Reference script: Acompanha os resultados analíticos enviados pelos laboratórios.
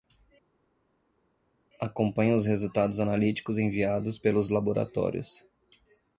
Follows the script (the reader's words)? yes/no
yes